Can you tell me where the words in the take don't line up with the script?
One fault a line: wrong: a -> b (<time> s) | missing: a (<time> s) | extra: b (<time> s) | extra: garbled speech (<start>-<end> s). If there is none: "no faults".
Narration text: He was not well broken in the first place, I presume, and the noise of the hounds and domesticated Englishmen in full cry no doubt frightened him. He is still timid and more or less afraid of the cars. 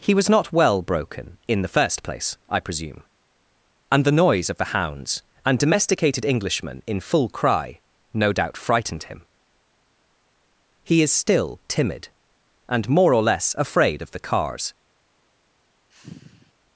no faults